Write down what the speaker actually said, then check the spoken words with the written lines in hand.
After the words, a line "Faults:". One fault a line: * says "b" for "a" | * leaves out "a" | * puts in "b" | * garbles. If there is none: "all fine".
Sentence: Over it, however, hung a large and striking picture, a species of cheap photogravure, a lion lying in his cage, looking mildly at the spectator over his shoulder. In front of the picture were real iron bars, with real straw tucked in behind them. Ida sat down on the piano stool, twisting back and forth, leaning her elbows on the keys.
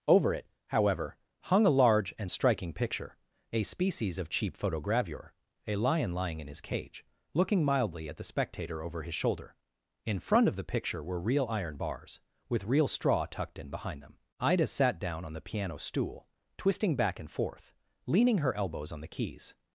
Over it, however, hung a large and striking picture, a species of cheap photogravure, a lion lying in his cage, looking mildly at the spectator over his shoulder. In front of the picture were real iron bars, with real straw tucked in behind them. Ida sat down on the piano stool, twisting back and forth, leaning her elbows on the keys.
Faults:
all fine